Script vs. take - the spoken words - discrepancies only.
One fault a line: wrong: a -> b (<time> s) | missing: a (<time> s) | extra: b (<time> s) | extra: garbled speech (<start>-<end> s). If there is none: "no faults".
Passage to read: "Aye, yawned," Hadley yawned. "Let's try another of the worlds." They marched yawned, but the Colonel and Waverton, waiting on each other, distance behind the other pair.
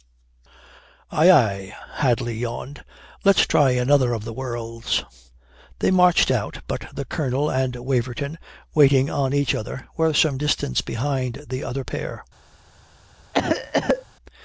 wrong: yawned -> aye (1.3 s)
wrong: yawned -> out (6.3 s)
extra: were some (10.0 s)